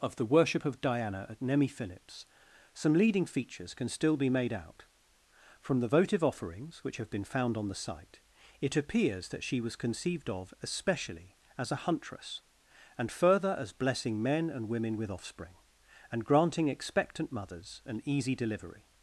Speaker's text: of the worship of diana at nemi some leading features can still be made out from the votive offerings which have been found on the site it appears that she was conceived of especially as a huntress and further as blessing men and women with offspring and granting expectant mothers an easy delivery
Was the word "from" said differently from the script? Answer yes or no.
no